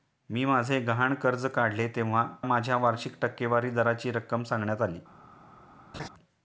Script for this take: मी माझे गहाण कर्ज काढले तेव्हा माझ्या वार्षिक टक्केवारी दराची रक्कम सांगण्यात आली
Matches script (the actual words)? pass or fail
pass